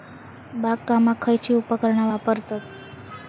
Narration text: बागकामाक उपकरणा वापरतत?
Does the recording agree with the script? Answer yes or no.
no